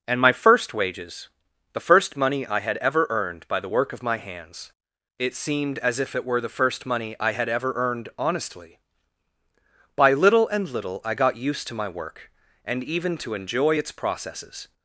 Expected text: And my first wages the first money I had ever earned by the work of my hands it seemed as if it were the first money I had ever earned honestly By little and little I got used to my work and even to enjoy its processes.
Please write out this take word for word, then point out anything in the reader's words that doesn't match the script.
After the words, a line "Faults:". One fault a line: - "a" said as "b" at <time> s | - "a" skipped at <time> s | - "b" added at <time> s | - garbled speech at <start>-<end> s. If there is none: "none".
And my first wages the first money I had ever earned by the work of my hands it seemed as if it were the first money I had ever earned honestly By little and little I got used to my work and even to enjoy its processes.
Faults:
none